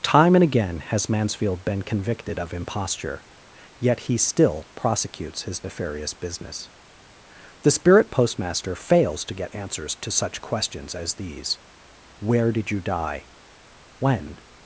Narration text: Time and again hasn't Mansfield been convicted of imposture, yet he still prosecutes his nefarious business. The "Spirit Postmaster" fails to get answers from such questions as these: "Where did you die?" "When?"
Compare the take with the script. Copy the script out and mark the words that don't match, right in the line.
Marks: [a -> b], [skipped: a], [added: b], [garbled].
Time and again [hasn't -> has] Mansfield been convicted of imposture, yet he still prosecutes his nefarious business. The "Spirit Postmaster" fails to get answers [from -> to] such questions as these: "Where did you die?" "When?"